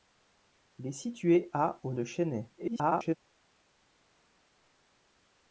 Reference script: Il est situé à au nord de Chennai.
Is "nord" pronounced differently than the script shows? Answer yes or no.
yes